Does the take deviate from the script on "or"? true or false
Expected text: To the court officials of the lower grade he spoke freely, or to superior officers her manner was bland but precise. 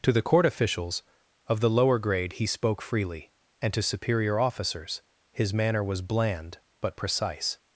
true